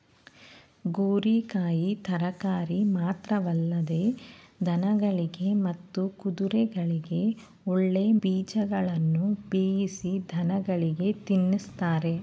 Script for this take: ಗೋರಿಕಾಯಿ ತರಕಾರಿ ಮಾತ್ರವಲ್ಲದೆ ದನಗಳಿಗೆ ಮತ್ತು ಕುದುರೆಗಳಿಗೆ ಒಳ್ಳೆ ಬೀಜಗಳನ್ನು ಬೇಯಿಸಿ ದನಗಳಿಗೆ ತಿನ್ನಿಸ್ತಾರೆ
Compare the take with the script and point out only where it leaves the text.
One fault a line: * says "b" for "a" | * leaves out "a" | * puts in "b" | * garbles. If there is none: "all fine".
all fine